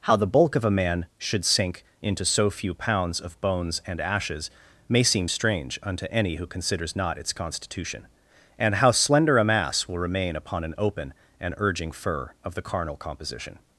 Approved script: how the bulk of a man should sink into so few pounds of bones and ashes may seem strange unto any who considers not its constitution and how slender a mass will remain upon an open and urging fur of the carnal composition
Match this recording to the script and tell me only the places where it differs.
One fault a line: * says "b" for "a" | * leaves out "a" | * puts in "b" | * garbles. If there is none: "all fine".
all fine